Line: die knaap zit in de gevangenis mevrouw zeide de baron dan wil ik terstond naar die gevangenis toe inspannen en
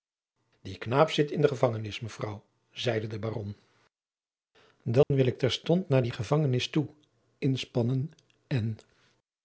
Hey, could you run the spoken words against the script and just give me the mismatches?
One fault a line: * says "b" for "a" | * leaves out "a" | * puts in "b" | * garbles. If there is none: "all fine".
all fine